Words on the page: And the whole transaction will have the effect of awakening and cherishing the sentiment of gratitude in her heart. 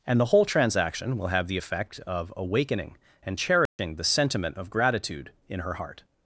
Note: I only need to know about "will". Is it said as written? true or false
true